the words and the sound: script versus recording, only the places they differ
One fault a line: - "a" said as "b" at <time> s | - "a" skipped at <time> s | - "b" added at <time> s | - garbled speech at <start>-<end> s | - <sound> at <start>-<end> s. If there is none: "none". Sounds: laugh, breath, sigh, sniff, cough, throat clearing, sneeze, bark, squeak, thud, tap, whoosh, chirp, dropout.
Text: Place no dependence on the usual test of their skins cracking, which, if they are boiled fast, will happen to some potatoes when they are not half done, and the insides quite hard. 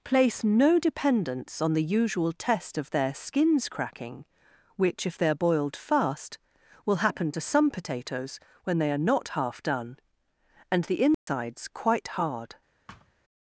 - dropout at 11.1-11.3 s
- thud at 12.9-13.1 s